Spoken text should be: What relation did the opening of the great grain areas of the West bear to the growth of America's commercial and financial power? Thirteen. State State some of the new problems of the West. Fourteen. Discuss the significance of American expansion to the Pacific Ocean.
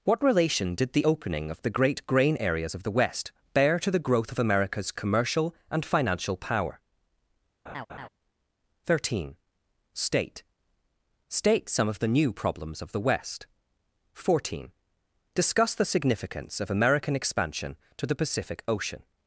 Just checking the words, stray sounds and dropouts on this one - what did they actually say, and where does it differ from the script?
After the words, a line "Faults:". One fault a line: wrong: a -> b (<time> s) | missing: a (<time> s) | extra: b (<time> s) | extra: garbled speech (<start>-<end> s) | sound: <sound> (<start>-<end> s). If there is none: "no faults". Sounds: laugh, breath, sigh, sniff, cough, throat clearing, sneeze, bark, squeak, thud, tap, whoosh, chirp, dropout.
What relation did the opening of the great grain areas of the West bear to the growth of America's commercial and financial power? Thirteen. State State some of the new problems of the West. Fourteen. Discuss the significance of American expansion to the Pacific Ocean.
Faults:
sound: laugh (7.7-8.1 s)